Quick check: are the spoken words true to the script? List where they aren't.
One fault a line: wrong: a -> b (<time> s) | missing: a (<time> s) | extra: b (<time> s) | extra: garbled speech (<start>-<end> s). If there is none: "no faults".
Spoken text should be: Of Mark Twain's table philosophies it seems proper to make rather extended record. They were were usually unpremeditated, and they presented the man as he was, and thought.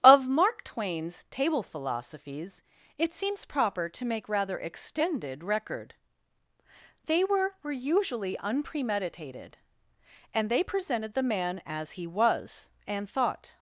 no faults